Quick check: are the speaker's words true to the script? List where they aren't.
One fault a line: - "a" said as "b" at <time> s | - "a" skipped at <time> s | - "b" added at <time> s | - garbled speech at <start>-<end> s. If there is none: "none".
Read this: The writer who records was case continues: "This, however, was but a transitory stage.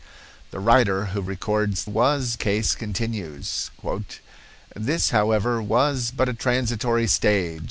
none